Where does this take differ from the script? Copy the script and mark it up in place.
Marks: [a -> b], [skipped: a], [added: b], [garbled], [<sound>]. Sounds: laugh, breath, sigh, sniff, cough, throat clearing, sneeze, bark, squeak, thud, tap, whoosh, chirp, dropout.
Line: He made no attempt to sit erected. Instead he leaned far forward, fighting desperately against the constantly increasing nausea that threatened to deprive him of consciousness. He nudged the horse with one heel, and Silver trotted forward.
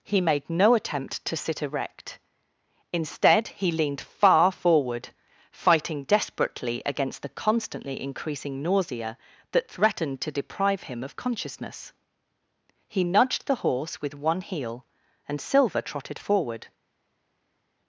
He made no attempt to sit [erected. -> erect] Instead he leaned far forward, fighting desperately against the constantly increasing nausea that threatened to deprive him of consciousness. He nudged the horse with one heel, and Silver trotted forward.